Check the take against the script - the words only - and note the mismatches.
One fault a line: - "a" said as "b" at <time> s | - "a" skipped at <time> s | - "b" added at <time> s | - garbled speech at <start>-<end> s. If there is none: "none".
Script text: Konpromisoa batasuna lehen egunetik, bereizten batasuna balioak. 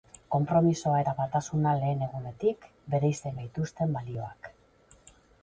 - "eta" added at 1.0 s
- "batasuna" said as "gaituzten" at 3.4 s